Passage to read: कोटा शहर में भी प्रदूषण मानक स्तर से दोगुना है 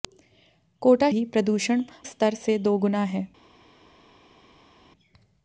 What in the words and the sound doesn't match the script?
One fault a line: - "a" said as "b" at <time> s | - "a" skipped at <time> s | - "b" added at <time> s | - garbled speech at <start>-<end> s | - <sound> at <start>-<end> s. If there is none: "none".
- "शहर में" skipped at 1.1 s
- "मानक" skipped at 1.8 s